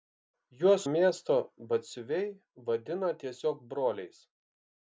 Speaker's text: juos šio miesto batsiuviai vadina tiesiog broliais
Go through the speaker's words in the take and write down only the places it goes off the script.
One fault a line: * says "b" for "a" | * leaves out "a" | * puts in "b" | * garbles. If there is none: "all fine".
* leaves out "šio"